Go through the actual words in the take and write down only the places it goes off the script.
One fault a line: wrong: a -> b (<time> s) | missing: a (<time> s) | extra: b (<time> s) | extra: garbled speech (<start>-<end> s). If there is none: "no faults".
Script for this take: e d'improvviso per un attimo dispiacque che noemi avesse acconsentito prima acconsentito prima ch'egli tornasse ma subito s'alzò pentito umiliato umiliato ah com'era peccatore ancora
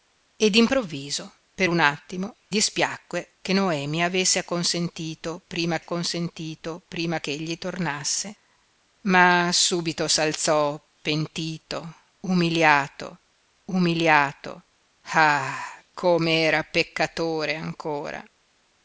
no faults